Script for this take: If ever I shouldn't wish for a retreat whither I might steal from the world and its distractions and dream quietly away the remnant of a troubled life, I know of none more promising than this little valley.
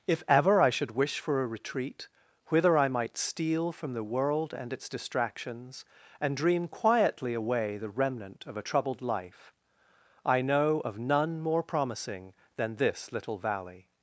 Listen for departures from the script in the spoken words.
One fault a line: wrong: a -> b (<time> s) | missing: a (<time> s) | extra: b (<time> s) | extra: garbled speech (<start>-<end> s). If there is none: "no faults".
wrong: shouldn't -> should (0.7 s)